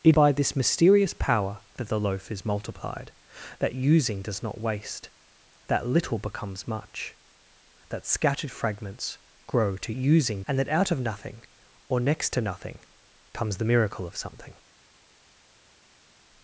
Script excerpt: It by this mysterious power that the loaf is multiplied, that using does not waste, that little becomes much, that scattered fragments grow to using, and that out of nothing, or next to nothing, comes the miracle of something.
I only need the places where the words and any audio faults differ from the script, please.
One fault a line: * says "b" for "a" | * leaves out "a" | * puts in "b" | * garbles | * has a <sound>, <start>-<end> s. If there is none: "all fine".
all fine